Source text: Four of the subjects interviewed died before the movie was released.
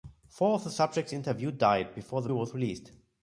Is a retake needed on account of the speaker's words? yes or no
yes